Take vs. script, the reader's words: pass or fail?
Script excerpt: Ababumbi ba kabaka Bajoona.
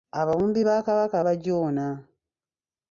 pass